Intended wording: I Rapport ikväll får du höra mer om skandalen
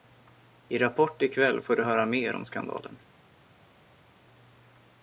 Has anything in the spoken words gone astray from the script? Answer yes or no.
no